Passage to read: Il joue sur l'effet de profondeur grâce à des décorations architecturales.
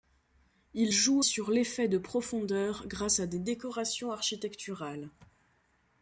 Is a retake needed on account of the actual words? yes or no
no